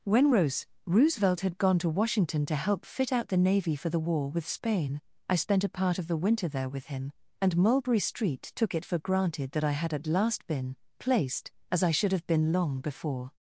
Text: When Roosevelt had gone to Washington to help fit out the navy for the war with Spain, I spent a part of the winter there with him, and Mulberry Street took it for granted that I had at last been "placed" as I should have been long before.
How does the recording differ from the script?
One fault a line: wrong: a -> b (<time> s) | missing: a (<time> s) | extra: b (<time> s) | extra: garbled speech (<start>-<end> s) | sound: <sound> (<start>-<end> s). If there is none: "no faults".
extra: rose (0.3 s)